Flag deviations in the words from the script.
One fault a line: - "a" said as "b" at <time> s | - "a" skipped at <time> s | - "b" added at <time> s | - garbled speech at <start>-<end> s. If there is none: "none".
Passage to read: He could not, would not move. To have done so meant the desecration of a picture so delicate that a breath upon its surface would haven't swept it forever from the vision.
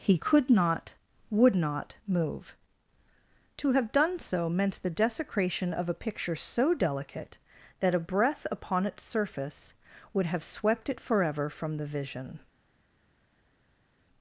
- "haven't" said as "have" at 10.3 s